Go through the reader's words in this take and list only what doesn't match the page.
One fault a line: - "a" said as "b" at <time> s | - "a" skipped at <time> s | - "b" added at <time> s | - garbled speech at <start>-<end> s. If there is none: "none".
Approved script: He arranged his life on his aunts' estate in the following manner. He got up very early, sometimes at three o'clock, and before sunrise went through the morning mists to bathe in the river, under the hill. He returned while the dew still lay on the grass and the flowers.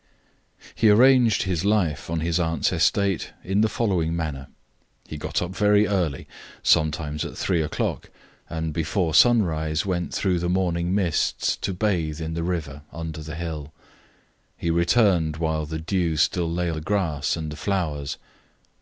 - "on" skipped at 16.7 s